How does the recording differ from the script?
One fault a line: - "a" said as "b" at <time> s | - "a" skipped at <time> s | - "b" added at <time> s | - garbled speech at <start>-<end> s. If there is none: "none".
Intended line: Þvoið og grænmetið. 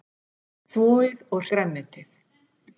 none